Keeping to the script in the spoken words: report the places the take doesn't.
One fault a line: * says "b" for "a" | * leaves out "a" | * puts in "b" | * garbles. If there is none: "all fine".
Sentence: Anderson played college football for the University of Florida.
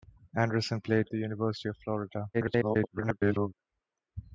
* leaves out "college football for"
* garbles